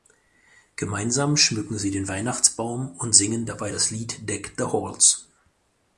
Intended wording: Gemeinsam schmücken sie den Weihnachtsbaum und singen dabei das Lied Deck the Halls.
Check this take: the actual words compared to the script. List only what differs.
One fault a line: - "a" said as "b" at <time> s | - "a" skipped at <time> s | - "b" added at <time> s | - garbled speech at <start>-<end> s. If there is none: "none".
none